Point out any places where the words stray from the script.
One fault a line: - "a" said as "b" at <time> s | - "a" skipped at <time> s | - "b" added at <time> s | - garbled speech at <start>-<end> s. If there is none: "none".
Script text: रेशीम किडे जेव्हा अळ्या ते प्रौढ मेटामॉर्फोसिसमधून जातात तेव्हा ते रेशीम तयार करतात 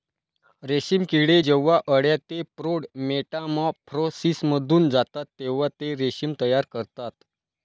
none